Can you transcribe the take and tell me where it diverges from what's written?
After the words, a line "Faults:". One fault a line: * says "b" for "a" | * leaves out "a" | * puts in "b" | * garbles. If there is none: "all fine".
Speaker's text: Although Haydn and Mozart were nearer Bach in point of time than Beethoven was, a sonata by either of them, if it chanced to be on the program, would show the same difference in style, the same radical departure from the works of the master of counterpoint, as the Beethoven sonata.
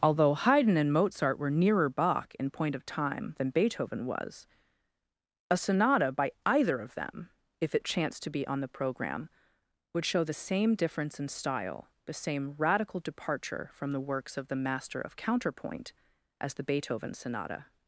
Although Haydn and Mozart were nearer Bach in point of time than Beethoven was, a sonata by either of them, if it chanced to be on the program, would show the same difference in style, the same radical departure from the works of the master of counterpoint, as the Beethoven sonata.
Faults:
all fine